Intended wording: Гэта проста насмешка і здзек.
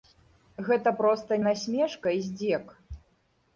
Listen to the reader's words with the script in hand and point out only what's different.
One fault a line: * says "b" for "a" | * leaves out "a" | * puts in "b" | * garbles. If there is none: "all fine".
all fine